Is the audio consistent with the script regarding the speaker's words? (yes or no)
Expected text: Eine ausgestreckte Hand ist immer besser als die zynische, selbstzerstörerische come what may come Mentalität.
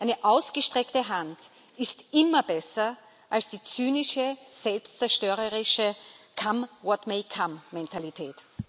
yes